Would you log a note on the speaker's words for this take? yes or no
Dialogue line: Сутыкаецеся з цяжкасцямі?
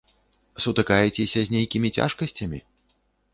yes